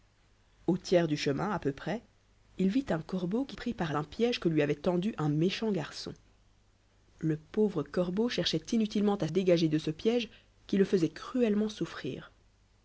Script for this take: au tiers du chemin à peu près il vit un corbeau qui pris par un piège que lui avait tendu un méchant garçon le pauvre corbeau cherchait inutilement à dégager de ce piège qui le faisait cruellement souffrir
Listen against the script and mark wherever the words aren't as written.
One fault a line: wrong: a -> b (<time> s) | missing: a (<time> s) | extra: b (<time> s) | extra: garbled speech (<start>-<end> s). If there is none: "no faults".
no faults